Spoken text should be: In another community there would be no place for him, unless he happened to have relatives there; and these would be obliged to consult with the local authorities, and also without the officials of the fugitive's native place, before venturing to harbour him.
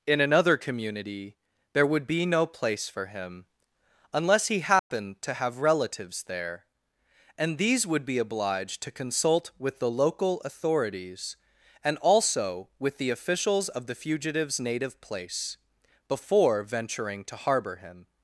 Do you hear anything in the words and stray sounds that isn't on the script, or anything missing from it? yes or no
yes